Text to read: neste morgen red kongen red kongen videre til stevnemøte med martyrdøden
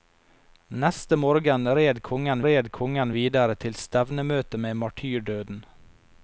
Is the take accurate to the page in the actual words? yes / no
yes